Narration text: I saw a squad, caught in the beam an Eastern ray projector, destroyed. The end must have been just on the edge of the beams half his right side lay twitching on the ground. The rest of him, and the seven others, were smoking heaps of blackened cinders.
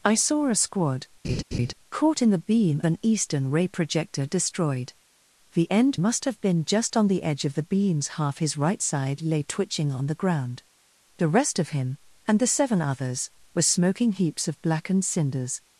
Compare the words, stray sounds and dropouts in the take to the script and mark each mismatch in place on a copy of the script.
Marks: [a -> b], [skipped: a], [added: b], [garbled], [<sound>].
I saw a squad, [laugh] caught in the beam an Eastern ray projector, destroyed. The end must have been just on the edge of the beams half his right side lay twitching on the ground. The rest of him, and the seven others, were smoking heaps of blackened cinders.